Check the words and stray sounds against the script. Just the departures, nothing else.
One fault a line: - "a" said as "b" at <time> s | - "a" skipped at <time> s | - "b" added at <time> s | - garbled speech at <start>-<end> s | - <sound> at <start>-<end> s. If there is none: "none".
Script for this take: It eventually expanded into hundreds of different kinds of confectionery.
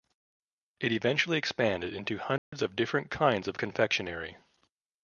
- dropout at 2.4-2.5 s